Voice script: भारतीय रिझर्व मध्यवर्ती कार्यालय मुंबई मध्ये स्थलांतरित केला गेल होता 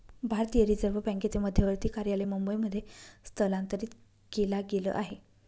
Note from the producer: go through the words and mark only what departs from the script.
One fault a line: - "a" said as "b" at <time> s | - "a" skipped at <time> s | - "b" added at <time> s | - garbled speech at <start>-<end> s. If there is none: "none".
- "बँकेचे" added at 1.0 s
- "होता" said as "आहे" at 4.9 s